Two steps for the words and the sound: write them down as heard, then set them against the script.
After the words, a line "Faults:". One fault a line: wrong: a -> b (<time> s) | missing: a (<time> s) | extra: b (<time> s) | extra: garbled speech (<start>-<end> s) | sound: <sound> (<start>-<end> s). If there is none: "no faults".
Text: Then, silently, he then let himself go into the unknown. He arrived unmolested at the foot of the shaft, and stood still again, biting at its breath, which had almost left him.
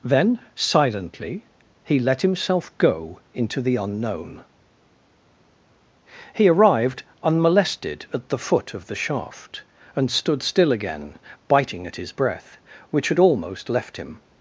Then, silently, he let himself go into the unknown. He arrived unmolested at the foot of the shaft, and stood still again, biting at his breath, which had almost left him.
Faults:
missing: then (2.0 s)
wrong: its -> his (12.0 s)